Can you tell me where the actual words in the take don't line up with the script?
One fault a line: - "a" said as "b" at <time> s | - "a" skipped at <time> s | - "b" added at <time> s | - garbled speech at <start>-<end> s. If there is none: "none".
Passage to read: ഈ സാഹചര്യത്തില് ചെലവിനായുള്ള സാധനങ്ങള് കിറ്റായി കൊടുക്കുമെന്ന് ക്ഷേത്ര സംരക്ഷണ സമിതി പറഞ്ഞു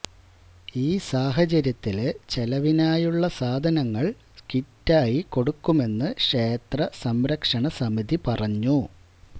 none